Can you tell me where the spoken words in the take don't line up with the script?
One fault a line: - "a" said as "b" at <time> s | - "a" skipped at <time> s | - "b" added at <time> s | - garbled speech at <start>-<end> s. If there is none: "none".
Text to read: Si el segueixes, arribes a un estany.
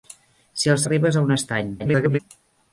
- "segueixes" skipped at 0.8 s
- garbled speech at 1.8-2.2 s